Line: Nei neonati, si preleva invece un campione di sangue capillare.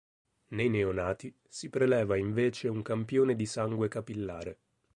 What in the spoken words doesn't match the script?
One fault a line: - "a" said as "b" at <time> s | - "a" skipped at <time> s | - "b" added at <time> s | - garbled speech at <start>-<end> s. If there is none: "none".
none